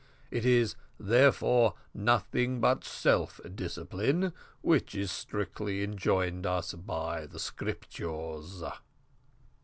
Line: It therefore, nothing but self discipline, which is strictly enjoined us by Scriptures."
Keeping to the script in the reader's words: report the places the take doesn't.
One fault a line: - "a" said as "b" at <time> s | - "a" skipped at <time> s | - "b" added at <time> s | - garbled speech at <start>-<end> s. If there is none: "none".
- "is" added at 0.5 s
- "the" added at 7.3 s